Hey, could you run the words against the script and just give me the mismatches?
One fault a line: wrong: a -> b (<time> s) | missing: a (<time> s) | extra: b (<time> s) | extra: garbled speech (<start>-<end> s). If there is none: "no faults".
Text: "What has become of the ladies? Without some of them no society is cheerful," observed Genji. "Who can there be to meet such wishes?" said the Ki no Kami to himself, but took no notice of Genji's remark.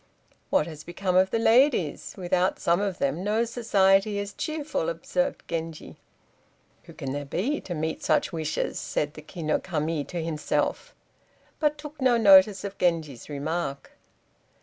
no faults